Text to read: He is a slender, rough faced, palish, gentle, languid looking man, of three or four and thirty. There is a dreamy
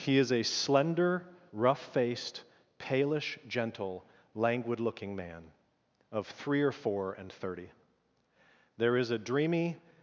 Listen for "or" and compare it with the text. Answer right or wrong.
right